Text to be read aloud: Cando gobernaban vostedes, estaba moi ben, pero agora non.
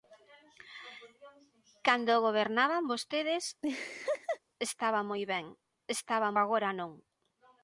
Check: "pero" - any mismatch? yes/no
yes